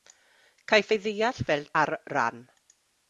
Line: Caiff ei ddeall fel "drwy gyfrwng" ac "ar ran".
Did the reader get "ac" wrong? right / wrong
wrong